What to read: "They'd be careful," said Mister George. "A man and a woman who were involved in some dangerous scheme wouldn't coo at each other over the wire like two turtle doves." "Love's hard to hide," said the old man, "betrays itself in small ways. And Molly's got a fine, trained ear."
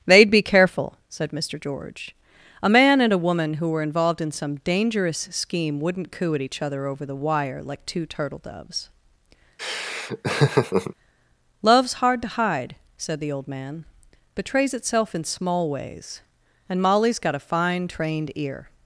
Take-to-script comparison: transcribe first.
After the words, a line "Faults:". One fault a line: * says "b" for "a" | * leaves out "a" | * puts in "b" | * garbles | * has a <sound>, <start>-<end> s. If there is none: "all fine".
"They'd be careful," said Mister George. "A man and a woman who were involved in some dangerous scheme wouldn't coo at each other over the wire like two turtle doves." "Love's hard to hide," said the old man, "betrays itself in small ways. And Molly's got a fine, trained ear."
Faults:
* has a laugh, 9.6-10.9 s